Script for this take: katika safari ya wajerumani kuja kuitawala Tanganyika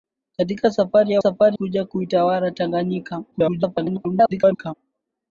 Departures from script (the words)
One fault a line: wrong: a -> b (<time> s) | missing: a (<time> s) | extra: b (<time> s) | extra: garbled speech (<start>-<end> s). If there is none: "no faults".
wrong: wajerumani -> safari (1.2 s)
extra: garbled speech (3.3-4.7 s)